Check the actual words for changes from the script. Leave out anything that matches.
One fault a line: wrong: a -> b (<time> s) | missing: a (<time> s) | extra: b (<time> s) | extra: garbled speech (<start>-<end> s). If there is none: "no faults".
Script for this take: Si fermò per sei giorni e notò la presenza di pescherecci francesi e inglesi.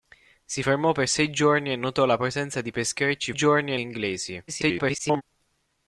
wrong: francesi -> giorni (3.3 s)
extra: garbled speech (4.5-5.2 s)